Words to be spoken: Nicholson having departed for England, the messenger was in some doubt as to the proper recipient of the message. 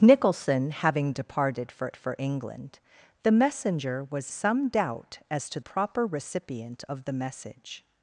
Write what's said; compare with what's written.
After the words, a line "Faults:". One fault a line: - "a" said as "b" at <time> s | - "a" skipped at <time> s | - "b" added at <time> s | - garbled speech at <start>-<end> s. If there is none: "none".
Nicholson having departed for for England, the messenger was some doubt as to proper recipient of the message.
Faults:
- "for" added at 2.0 s
- "in" skipped at 4.3 s
- "the" skipped at 5.6 s